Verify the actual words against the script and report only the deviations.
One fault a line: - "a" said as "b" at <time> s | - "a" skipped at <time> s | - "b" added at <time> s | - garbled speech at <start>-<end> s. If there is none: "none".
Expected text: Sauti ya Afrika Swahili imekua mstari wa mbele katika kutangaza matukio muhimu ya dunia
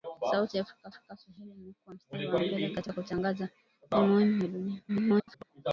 - "Afrika" added at 0.9 s
- garbled speech at 4.9-5.4 s